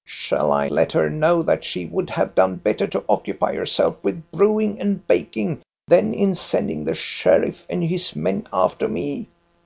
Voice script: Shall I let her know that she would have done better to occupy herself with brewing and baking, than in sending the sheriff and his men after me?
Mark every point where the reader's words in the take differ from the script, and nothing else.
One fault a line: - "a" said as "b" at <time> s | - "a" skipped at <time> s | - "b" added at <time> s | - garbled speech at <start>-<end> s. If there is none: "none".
none